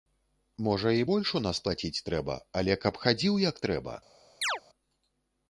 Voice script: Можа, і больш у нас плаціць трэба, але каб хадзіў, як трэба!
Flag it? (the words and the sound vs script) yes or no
yes